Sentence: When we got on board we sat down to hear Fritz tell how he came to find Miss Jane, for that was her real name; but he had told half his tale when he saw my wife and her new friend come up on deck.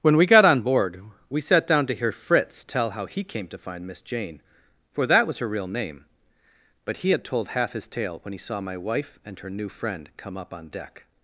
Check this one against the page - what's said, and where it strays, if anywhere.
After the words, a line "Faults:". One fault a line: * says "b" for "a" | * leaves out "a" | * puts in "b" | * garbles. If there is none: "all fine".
When we got on board we sat down to hear Fritz tell how he came to find Miss Jane, for that was her real name; but he had told half his tale when he saw my wife and her new friend come up on deck.
Faults:
all fine